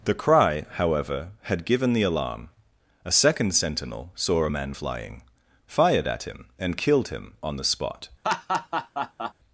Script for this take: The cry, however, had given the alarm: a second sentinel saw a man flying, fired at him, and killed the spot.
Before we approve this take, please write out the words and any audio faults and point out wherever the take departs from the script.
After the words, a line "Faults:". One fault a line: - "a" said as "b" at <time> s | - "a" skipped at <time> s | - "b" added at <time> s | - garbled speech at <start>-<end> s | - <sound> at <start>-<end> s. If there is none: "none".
The cry, however, had given the alarm: a second sentinel saw a man flying, fired at him, and killed him on the spot.
Faults:
- "him on" added at 7.1 s
- laugh at 8.2-9.3 s